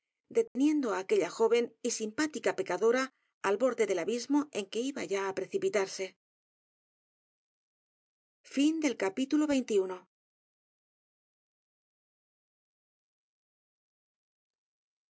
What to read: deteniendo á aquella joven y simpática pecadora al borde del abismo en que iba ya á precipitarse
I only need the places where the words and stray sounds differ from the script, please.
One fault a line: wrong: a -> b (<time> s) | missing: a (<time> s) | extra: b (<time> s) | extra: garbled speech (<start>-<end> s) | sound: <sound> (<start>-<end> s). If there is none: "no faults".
sound: dropout (0.5-0.6 s)